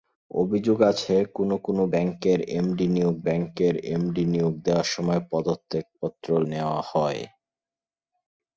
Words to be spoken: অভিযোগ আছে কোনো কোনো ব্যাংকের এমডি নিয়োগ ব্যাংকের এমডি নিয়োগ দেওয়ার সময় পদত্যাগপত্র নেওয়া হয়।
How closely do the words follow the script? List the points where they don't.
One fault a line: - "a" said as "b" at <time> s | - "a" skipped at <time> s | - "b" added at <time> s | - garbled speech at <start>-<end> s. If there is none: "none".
none